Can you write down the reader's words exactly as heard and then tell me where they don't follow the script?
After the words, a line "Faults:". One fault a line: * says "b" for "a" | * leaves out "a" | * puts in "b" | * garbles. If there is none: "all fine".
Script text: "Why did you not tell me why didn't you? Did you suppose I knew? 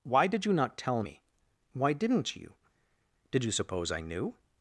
"Why did you not tell me why didn't you? Did you suppose I knew?
Faults:
all fine